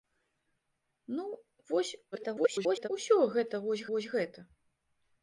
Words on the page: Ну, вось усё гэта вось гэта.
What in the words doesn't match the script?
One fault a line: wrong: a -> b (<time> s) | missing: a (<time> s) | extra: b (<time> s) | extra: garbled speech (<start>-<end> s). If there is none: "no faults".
extra: garbled speech (2.1-2.9 s)
extra: вось (3.9 s)